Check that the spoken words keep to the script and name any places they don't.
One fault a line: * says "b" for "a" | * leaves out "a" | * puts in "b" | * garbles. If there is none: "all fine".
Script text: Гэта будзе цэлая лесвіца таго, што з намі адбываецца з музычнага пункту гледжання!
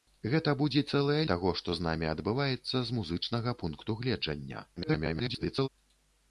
* leaves out "лесвіца"
* garbles